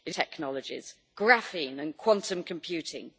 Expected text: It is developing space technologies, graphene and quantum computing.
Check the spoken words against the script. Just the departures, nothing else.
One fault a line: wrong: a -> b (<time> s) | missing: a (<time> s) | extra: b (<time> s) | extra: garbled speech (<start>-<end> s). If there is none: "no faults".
missing: is developing space (0.1 s)